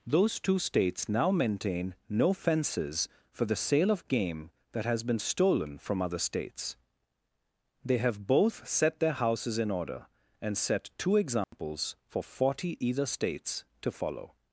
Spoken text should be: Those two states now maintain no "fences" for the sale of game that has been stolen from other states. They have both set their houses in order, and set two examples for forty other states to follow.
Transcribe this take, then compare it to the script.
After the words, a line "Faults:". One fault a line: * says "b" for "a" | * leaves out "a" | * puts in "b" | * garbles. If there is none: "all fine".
Those two states now maintain no "fences" for the sale of game that has been stolen from other states. They have both set their houses in order, and set two examples for forty either states to follow.
Faults:
* says "either" for "other"